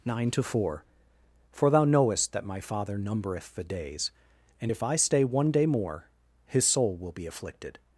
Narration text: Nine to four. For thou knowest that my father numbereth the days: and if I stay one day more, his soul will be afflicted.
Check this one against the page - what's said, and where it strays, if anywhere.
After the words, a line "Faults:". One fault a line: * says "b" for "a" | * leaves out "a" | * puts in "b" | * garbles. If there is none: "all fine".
Nine to four. For thou knowest that my father numbereth the days: and if I stay one day more, his soul will be afflicted.
Faults:
all fine